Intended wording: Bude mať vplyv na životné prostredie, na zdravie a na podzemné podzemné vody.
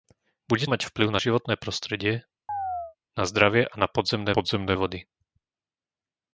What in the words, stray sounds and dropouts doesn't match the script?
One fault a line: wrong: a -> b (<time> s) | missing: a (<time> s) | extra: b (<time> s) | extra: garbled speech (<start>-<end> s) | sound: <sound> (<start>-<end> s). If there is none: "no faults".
sound: chirp (2.5-3.0 s)